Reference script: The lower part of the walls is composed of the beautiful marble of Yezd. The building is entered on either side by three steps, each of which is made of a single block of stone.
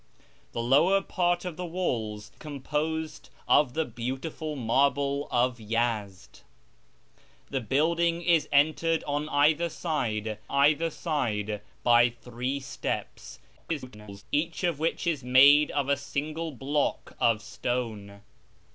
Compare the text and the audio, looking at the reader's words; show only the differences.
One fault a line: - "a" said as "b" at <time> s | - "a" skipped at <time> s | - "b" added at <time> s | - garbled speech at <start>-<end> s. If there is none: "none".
- "is" skipped at 2.3 s
- "either side" added at 10.5 s
- garbled speech at 13.6-14.2 s